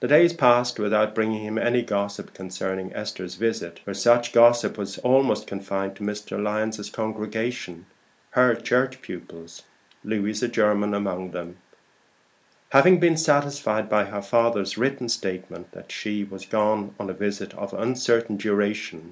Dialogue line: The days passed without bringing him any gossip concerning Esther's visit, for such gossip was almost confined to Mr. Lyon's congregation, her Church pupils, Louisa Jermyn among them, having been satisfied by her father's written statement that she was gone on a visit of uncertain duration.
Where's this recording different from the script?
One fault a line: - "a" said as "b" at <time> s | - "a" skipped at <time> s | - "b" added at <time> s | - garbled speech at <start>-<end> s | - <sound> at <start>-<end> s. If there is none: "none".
none